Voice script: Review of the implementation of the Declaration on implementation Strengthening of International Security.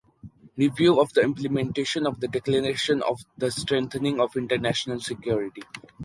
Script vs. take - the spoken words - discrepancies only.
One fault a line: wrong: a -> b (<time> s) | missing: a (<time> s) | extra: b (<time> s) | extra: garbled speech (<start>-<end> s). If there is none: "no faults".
wrong: implementation -> the (3.4 s)